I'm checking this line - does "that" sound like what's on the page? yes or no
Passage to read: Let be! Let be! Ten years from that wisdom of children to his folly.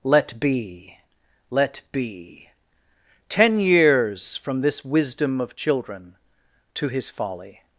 no